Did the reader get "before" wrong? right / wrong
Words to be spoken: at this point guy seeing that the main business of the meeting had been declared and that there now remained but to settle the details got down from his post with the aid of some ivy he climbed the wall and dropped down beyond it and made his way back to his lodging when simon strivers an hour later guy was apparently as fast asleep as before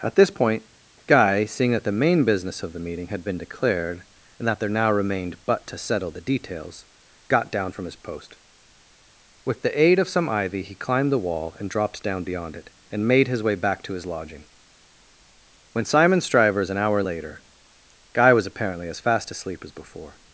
right